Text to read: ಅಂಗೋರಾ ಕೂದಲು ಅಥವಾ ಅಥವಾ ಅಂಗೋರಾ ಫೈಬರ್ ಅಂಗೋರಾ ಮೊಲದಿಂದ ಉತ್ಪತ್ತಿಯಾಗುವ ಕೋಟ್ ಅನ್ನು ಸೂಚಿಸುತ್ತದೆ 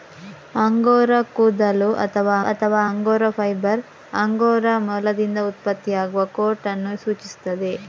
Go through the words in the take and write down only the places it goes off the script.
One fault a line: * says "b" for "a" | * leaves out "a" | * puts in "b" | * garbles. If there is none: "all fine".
all fine